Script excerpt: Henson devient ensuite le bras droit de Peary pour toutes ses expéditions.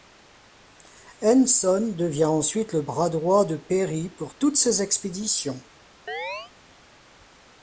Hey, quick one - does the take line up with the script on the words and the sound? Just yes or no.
no